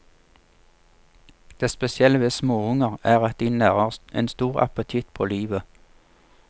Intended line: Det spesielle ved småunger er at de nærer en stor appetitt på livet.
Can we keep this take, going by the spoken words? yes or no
yes